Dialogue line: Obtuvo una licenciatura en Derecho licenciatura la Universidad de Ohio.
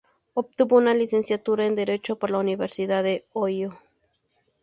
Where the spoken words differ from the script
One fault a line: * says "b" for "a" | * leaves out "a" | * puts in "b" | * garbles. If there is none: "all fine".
* says "por" for "licenciatura"